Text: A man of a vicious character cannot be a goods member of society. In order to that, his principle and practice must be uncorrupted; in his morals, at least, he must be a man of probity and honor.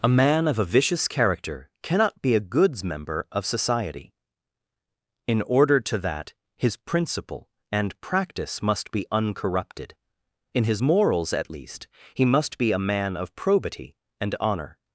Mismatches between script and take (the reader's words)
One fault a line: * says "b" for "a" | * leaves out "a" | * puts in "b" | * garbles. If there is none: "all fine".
all fine